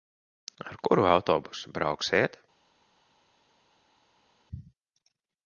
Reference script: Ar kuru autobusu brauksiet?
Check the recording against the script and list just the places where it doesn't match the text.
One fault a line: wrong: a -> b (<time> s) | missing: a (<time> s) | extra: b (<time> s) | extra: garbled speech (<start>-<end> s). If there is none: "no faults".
no faults